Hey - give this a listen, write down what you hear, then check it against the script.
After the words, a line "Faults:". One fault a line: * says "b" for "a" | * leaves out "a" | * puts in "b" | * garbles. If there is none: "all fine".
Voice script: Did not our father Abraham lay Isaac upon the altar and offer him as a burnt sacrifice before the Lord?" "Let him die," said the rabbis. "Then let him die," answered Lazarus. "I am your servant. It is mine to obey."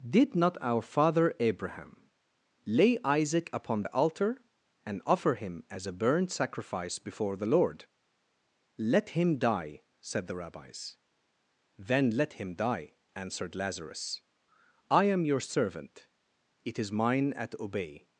Did not our father Abraham lay Isaac upon the altar and offer him as a burnt sacrifice before the Lord?" "Let him die," said the rabbis. "Then let him die," answered Lazarus. "I am your servant. It is mine at obey."
Faults:
* says "at" for "to"